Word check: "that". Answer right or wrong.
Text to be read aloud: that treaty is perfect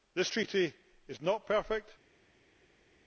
wrong